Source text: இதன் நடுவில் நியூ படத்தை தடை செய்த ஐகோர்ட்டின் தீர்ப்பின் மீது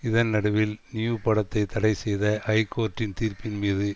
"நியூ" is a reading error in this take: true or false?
false